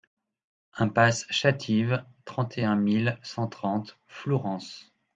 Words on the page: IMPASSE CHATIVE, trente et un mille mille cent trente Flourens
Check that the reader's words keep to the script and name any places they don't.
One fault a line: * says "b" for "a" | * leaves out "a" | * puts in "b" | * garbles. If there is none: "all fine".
* leaves out "mille"